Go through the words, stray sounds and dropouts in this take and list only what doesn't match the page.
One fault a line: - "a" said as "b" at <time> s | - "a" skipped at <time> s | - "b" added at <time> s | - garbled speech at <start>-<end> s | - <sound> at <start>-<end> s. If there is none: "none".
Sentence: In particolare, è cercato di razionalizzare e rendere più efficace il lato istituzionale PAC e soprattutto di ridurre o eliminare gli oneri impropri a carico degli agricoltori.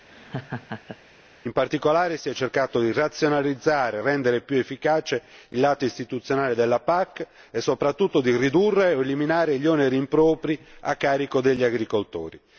- laugh at 0.1-1.0 s
- "si" added at 2.2 s
- "della" added at 6.5 s